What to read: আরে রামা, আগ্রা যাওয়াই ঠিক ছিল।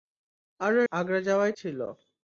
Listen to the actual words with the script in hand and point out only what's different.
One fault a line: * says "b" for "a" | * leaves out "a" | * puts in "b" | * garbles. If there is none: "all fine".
* leaves out "রামা"
* leaves out "ঠিক"